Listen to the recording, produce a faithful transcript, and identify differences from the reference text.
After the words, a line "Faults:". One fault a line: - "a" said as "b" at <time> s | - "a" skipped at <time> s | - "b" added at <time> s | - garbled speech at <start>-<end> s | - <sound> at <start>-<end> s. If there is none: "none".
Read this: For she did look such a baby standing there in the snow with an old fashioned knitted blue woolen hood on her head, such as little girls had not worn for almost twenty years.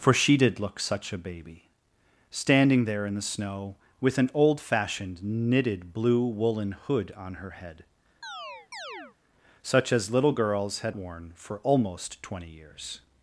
For she did look such a baby standing there in the snow with an old fashioned knitted blue woolen hood on her head, such as little girls had worn for almost twenty years.
Faults:
- chirp at 8.2-9.2 s
- "not" skipped at 11.0 s